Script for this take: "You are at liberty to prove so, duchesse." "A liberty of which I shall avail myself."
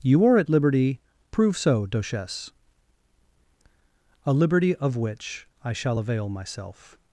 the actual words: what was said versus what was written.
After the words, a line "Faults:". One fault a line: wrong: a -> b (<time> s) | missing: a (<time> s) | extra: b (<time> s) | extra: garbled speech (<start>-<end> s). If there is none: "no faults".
"You are at liberty prove so, duchesse." "A liberty of which I shall avail myself."
Faults:
missing: to (1.0 s)